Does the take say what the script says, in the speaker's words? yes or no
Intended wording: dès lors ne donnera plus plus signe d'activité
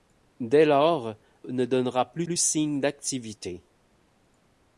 yes